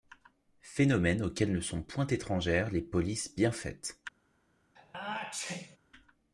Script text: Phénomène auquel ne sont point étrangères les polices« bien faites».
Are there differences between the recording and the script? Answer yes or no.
no